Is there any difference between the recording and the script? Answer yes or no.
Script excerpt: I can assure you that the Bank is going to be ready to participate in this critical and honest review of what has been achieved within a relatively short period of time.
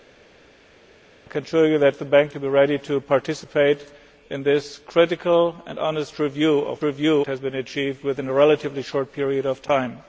yes